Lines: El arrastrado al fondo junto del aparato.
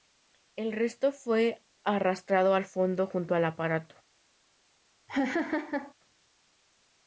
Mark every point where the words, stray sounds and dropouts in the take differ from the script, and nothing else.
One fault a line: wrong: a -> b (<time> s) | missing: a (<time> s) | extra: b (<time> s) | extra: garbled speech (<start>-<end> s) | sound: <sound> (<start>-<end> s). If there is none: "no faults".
extra: resto fue (0.7 s)
wrong: del -> al (3.4 s)
sound: laugh (5.1-5.9 s)